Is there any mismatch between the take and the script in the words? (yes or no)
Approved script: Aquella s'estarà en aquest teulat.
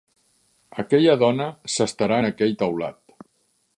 yes